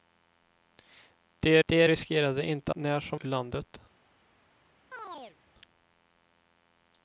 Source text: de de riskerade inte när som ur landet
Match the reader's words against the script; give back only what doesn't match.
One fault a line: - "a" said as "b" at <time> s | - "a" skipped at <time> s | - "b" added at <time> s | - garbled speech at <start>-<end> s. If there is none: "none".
none